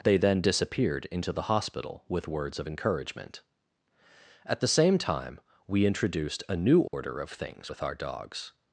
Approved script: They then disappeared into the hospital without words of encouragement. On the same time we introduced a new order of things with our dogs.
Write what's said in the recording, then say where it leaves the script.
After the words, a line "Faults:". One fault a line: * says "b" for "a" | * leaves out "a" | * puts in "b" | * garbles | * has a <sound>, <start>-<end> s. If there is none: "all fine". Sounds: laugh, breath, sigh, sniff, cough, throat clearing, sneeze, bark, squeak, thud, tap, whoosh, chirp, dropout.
They then disappeared into the hospital with words of encouragement. At the same time we introduced a new order of things with our dogs.
Faults:
* says "with" for "without"
* says "At" for "On"
* has a dropout, 6.9-6.9 s